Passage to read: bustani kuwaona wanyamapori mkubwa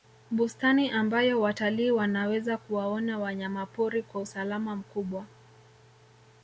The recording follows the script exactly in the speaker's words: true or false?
false